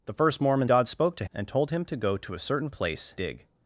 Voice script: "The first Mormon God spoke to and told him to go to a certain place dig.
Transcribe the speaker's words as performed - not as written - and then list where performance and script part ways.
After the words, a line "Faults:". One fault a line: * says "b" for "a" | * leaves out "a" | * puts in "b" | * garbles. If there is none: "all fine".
"The first Mormon God spoke to and told him to go to a certain place dig.
Faults:
all fine